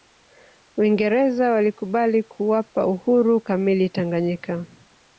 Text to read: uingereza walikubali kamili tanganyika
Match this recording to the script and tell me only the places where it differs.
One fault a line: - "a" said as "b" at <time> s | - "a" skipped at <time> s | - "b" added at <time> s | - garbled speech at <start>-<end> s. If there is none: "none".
- "kuwapa uhuru" added at 2.2 s